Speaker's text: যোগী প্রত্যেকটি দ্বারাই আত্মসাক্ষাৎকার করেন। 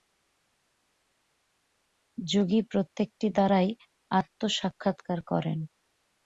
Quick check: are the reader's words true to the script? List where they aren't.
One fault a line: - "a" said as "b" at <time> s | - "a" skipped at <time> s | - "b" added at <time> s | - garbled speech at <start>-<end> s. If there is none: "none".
none